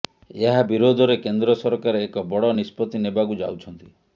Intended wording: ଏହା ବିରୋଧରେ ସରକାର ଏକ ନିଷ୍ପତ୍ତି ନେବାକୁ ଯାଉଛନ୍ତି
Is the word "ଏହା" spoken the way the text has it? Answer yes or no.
yes